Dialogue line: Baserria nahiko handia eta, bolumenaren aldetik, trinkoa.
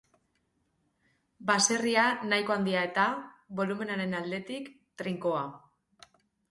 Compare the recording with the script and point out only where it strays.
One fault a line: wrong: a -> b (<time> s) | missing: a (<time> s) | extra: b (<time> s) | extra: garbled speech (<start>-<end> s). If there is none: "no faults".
no faults